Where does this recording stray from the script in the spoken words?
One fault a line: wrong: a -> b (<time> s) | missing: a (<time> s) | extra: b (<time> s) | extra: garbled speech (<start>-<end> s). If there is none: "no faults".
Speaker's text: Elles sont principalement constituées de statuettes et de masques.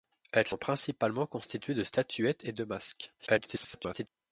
extra: garbled speech (3.2-4.1 s)